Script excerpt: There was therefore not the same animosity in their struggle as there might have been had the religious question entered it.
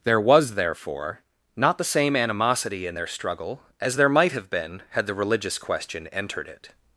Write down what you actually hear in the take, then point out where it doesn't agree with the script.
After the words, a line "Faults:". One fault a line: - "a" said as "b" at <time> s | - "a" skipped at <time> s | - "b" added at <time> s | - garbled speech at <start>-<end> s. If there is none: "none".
There was therefore not the same animosity in their struggle as there might have been had the religious question entered it.
Faults:
none